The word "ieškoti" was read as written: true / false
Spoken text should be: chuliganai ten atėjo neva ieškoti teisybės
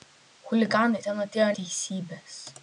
false